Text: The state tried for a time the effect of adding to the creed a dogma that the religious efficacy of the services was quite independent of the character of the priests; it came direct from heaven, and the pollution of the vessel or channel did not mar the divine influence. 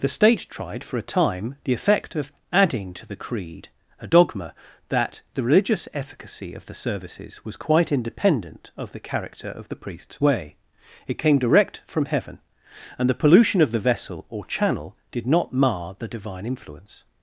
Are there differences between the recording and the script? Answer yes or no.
yes